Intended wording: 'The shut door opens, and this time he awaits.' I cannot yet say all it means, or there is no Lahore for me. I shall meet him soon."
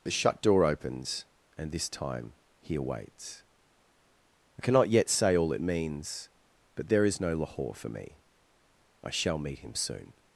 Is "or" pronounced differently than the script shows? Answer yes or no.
yes